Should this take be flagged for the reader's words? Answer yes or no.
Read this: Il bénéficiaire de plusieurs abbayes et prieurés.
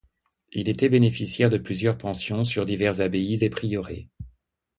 yes